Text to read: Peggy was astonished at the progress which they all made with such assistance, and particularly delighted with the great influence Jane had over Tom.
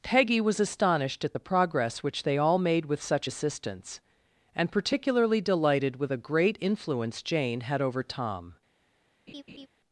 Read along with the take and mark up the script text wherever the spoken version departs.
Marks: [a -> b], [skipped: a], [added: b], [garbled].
Peggy was astonished at the progress which they all made with such assistance, and particularly delighted with [the -> a] great influence Jane had over Tom.